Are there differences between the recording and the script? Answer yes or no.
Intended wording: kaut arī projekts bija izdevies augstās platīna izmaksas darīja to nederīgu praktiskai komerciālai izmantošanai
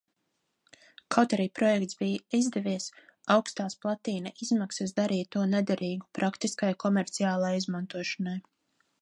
no